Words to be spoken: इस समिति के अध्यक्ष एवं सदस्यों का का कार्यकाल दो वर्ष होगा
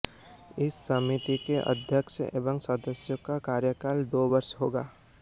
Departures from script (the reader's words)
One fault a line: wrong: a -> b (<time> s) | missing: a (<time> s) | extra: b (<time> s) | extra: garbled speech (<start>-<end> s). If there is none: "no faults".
missing: का (3.4 s)